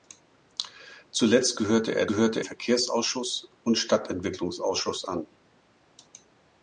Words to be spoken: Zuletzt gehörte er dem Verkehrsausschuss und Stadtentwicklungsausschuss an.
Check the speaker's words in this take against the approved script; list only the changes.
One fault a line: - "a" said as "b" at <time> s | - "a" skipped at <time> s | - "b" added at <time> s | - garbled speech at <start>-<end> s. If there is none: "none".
- "dem" said as "gehörte" at 2.1 s